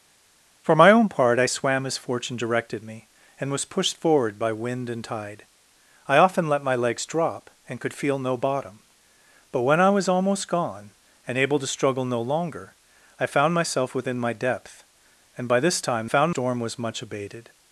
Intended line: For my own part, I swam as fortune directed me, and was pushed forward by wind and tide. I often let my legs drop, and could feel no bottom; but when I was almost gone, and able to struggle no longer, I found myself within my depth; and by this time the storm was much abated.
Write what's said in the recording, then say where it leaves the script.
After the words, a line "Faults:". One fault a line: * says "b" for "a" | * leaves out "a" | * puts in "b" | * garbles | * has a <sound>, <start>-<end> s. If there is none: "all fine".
For my own part, I swam as fortune directed me, and was pushed forward by wind and tide. I often let my legs drop, and could feel no bottom; but when I was almost gone, and able to struggle no longer, I found myself within my depth; and by this time found storm was much abated.
Faults:
* says "found" for "the"